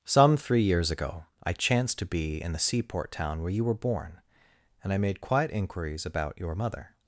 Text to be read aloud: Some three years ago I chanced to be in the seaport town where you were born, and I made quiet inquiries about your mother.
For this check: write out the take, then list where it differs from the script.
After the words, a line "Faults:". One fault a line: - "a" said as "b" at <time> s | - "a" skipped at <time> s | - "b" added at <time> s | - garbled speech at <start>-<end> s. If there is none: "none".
Some three years ago I chanced to be in the seaport town where you were born, and I made quiet inquiries about your mother.
Faults:
none